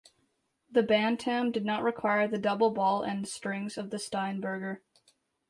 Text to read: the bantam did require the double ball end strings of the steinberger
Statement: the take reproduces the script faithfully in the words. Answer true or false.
false